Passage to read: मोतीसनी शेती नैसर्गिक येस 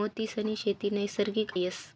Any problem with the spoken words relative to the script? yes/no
no